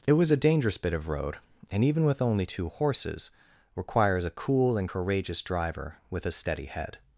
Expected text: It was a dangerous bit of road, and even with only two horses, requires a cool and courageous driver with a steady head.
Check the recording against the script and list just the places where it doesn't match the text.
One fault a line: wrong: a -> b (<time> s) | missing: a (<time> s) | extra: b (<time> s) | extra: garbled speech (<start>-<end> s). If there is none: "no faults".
no faults